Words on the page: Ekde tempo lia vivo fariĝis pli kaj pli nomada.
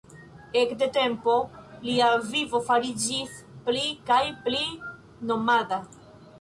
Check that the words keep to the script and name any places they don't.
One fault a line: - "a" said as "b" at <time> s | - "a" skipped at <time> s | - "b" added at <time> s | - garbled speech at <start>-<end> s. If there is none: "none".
none